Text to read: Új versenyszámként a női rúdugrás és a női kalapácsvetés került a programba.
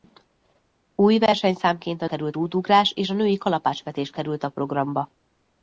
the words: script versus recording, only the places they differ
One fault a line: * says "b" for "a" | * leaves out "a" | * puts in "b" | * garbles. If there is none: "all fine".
* says "került" for "női"